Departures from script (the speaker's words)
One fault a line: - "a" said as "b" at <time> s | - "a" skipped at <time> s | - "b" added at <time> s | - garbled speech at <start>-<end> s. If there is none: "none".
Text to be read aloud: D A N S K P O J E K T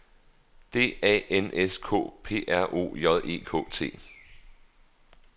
- "R" added at 2.5 s